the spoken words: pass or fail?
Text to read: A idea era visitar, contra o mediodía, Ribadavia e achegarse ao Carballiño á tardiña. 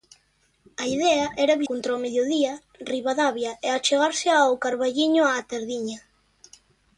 fail